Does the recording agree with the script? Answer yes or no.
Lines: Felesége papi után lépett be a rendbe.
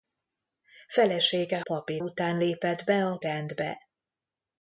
yes